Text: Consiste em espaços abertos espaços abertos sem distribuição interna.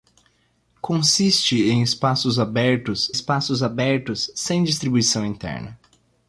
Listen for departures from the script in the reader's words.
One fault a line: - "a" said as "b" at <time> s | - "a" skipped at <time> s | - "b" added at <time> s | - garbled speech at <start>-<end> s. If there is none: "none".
none